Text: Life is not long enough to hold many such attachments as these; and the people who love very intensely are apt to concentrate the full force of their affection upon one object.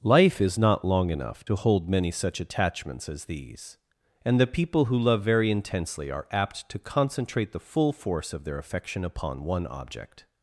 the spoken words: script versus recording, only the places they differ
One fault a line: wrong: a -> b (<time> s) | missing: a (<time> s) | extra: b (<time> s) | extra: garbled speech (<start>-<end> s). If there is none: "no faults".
no faults